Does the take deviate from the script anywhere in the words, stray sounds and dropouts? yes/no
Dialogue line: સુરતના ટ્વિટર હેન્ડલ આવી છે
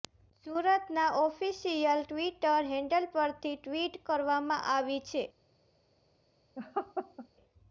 yes